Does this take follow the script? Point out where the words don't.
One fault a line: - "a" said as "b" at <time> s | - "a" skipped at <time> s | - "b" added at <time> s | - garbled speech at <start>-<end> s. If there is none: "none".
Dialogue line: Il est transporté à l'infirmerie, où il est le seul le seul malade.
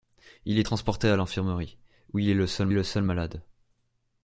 none